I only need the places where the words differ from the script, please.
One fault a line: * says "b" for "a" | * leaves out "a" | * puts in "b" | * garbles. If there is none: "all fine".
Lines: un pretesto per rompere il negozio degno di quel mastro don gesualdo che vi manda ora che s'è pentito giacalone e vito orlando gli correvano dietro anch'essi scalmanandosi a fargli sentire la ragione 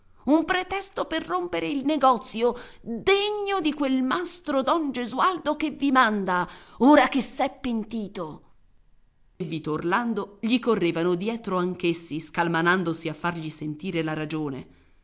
* leaves out "giacalone"